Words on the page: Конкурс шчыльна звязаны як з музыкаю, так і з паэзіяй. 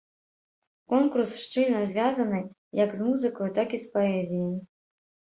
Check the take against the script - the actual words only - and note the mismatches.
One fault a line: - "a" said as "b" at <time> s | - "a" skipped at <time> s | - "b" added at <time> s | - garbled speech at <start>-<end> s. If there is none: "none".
none